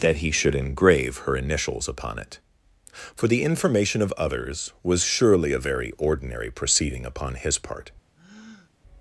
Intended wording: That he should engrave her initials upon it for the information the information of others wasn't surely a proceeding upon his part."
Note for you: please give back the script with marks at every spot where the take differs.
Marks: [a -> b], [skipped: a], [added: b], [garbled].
That he should engrave her initials upon it for the information [skipped: the information] of others [wasn't -> was] surely a [added: very ordinary] proceeding upon his part."